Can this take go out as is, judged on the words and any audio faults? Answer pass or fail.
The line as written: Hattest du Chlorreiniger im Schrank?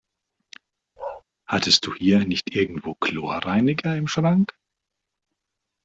fail